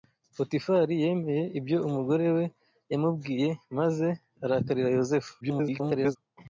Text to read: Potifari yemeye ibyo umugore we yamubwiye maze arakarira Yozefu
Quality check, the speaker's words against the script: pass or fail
fail